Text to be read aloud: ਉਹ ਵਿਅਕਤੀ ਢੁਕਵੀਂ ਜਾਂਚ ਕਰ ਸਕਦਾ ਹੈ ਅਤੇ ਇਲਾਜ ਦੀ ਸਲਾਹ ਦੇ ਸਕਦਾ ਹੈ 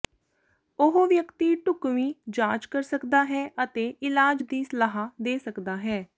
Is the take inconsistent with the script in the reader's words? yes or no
no